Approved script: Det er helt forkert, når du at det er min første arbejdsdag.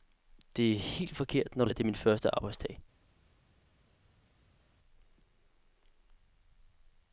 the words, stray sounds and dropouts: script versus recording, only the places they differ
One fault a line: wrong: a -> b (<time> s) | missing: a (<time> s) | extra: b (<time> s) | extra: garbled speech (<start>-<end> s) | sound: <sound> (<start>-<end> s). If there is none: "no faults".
no faults